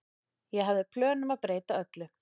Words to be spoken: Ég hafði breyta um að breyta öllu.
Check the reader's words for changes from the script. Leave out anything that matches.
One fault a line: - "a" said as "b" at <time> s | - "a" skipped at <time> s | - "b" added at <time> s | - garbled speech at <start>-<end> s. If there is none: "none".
- "breyta" said as "plön" at 0.9 s